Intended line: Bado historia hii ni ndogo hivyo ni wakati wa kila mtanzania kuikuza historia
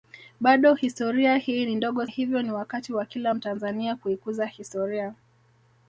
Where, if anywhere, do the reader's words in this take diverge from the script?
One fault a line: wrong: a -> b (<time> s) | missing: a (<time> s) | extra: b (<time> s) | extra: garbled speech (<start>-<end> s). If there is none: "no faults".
no faults